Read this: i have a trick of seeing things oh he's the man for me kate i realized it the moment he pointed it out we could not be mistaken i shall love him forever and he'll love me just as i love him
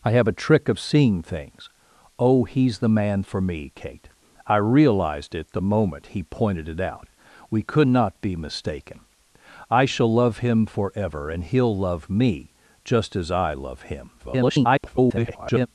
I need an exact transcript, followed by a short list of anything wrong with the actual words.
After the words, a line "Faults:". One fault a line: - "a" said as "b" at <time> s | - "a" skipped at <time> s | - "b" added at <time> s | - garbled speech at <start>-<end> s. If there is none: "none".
i have a trick of seeing things oh he's the man for me kate i realized it the moment he pointed it out we could not be mistaken i shall love him forever and he'll love me just as i love him [garbled]
Faults:
- garbled speech at 14.2-15.7 s